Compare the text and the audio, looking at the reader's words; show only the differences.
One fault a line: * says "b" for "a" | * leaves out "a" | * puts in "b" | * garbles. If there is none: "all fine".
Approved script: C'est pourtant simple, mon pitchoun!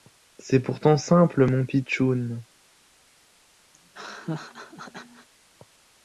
all fine